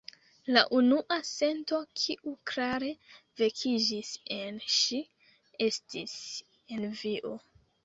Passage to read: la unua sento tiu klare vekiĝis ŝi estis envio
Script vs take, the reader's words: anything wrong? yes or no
yes